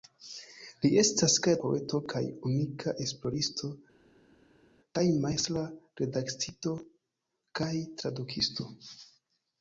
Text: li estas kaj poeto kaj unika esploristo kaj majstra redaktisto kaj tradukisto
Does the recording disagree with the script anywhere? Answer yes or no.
no